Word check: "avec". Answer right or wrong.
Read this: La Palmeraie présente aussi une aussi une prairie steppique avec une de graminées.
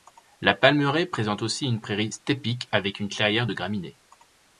right